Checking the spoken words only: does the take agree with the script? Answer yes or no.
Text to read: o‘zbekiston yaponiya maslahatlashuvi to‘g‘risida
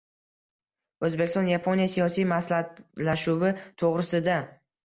no